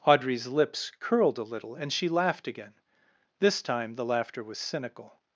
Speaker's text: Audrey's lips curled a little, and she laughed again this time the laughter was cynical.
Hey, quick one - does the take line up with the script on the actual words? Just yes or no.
yes